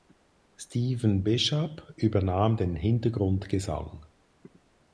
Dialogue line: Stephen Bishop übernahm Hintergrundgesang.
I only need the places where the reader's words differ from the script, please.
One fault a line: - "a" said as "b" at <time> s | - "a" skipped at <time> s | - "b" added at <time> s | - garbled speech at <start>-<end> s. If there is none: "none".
- "den" added at 2.6 s